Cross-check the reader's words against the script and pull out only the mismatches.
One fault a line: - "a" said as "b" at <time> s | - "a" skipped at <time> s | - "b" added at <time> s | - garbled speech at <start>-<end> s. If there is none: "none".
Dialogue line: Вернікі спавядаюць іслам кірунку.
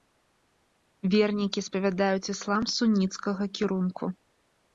- "суніцкага" added at 2.7 s